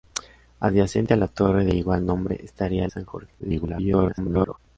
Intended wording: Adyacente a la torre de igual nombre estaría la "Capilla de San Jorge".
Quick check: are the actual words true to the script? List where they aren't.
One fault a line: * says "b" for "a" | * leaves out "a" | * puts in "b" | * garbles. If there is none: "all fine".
* leaves out "la Capilla de"
* garbles